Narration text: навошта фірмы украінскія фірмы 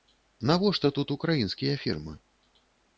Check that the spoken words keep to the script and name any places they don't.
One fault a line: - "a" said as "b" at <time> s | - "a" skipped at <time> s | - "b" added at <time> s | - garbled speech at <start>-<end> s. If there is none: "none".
- "фірмы" said as "тут" at 1.0 s